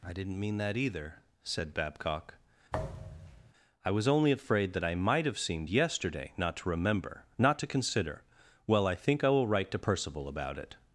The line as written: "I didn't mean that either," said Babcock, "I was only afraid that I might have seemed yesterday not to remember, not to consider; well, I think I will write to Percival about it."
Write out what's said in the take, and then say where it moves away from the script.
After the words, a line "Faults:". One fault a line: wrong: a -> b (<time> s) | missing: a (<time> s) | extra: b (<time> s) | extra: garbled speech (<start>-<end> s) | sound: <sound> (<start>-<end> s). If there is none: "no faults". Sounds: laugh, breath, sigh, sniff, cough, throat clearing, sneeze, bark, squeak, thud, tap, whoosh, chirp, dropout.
"I didn't mean that either," said Babcock, "I was only afraid that I might have seemed yesterday not to remember, not to consider; well, I think I will write to Percival about it."
Faults:
sound: thud (2.7-3.5 s)